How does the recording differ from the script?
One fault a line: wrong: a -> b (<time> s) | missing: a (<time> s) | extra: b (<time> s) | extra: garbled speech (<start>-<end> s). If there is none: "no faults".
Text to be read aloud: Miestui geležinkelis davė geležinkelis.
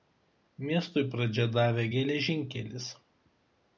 wrong: geležinkelis -> pradžią (1.1 s)